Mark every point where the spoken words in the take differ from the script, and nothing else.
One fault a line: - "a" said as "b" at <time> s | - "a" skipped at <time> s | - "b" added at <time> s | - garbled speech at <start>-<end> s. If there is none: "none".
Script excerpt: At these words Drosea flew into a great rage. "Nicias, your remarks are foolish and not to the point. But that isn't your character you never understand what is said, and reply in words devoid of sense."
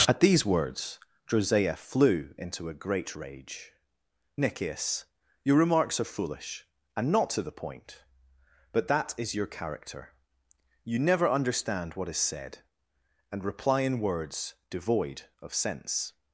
- "isn't" said as "is" at 9.2 s